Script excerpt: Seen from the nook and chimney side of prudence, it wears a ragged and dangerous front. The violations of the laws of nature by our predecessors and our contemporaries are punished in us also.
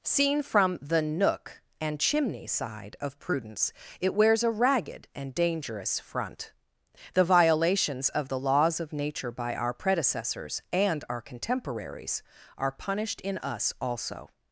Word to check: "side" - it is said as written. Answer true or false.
true